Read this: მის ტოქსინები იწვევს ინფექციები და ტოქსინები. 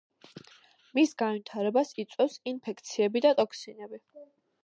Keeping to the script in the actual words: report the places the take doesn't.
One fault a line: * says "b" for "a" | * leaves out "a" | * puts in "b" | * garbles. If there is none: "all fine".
* says "განვითარებას" for "ტოქსინები"